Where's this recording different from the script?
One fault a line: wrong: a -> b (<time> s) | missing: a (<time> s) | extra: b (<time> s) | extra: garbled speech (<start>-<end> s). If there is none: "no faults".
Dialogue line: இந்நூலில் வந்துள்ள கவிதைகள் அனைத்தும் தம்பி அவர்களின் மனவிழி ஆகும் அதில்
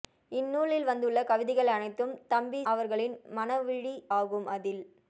no faults